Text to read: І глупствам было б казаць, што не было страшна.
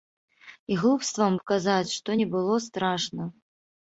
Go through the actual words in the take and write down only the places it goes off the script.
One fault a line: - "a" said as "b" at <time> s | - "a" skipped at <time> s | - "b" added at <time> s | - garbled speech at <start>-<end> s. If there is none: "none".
- "было" skipped at 1.4 s